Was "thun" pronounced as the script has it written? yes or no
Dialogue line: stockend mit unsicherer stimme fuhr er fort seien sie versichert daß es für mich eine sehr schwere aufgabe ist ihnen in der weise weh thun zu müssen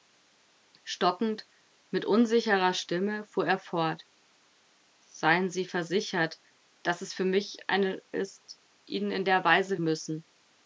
no